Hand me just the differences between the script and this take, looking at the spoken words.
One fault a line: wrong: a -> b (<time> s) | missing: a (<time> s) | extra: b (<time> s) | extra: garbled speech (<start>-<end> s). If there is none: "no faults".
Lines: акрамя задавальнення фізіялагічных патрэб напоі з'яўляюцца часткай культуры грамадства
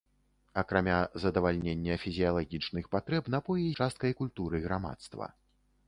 missing: з'яўляюцца (3.7 s)